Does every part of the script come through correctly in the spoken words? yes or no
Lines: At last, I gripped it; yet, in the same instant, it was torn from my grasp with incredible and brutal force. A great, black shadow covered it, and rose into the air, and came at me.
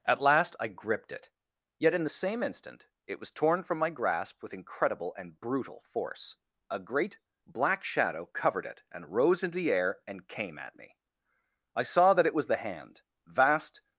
no